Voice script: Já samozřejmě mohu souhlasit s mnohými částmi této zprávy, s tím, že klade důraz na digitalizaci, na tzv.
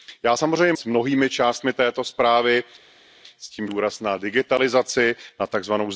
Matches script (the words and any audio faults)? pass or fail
fail